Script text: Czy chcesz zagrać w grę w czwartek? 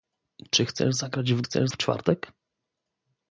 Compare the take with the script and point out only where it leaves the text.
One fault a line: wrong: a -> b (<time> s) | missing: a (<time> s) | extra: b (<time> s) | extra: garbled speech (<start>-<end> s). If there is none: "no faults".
wrong: grę -> chcesz (1.4 s)